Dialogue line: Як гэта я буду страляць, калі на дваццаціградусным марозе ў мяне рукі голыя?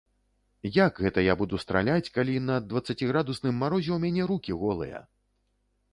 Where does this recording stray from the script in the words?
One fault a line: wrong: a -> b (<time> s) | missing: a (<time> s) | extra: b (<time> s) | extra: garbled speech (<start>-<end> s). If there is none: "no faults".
no faults